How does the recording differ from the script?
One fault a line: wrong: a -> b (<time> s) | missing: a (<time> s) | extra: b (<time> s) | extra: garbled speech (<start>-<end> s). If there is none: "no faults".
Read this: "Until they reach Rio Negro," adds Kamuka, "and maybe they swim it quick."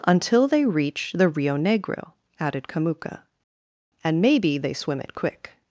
extra: the (1.1 s)
wrong: adds -> added (2.4 s)